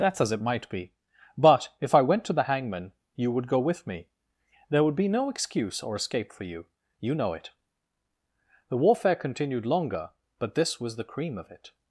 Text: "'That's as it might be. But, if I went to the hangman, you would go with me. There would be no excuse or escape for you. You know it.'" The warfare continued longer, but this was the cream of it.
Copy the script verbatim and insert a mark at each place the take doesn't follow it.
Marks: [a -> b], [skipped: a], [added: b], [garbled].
"'That's as it might be. But, if I went to the hangman, you would go with me. There would be no excuse or escape for you. You know it.'" The warfare continued longer, but this was the cream of it.